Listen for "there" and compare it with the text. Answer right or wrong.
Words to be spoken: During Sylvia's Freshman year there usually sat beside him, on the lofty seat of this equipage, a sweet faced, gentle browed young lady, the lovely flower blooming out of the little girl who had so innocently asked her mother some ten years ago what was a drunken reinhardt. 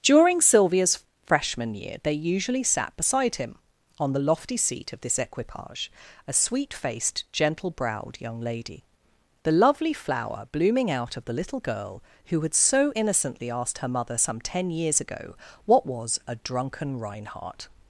wrong